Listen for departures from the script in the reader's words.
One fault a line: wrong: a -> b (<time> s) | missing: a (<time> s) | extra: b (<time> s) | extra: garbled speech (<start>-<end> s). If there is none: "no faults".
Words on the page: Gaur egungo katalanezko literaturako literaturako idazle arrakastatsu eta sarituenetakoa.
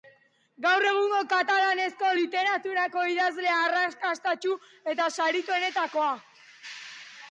missing: literaturako (3.0 s)